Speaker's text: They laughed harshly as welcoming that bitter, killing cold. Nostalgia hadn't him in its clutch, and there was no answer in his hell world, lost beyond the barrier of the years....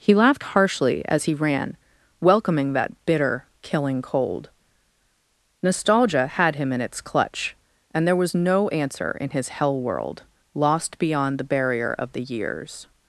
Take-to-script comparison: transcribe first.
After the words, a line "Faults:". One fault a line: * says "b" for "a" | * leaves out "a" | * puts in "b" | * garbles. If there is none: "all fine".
He laughed harshly as he ran, welcoming that bitter, killing cold. Nostalgia had him in its clutch, and there was no answer in his hell world, lost beyond the barrier of the years....
Faults:
* says "He" for "They"
* puts in "he ran"
* says "had" for "hadn't"